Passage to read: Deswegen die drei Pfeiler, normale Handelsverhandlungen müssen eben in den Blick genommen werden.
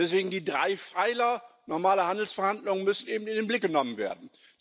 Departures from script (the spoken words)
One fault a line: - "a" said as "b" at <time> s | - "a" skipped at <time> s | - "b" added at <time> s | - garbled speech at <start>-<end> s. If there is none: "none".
none